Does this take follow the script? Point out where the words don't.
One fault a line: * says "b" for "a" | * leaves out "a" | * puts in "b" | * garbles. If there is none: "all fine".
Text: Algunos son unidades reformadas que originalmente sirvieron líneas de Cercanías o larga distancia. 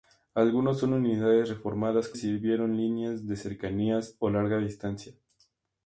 * leaves out "originalmente"